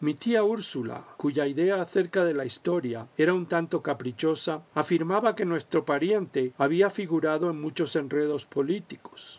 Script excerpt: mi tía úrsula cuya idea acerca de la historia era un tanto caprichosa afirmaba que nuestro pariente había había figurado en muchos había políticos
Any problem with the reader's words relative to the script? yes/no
yes